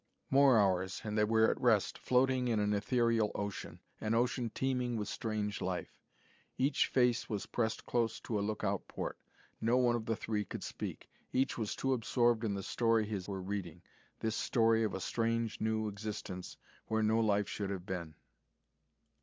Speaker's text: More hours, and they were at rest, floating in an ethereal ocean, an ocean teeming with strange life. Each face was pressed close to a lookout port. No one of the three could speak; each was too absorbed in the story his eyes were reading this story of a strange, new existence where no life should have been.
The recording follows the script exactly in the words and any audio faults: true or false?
false